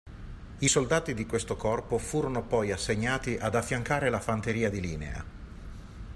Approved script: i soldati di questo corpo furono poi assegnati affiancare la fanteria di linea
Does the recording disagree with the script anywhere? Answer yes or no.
yes